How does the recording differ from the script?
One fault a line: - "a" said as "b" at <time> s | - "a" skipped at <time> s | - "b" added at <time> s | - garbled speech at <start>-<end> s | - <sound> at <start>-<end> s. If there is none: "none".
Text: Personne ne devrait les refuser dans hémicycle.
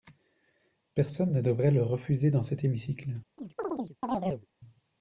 - "les" said as "le" at 1.7 s
- "cet" added at 2.4 s
- chirp at 3.4-4.5 s